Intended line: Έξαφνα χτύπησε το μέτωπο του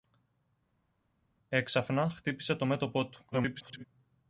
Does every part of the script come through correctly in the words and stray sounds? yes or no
no